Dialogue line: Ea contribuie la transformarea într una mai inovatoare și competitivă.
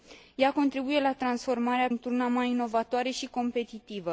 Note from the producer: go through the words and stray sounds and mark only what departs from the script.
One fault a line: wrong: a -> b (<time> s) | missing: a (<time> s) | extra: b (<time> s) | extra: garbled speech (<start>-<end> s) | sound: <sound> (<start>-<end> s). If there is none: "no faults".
no faults